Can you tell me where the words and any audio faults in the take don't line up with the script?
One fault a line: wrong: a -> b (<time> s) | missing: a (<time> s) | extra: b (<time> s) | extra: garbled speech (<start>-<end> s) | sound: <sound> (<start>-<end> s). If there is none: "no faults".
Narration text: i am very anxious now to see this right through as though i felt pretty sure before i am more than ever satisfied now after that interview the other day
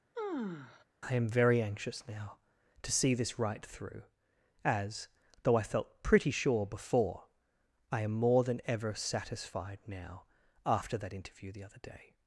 sound: sigh (0.1-0.8 s)